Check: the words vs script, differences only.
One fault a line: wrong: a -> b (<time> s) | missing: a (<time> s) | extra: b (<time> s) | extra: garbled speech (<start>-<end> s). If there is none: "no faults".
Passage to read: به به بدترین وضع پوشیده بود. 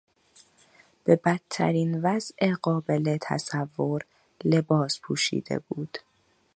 missing: به (1.1 s)
extra: قابل تصور لباس (2.6 s)